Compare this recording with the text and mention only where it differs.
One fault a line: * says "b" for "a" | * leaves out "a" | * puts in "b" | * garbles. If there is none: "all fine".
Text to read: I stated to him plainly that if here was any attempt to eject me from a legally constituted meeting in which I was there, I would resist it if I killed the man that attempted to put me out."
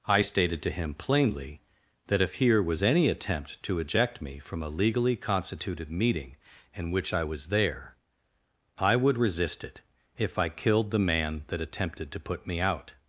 all fine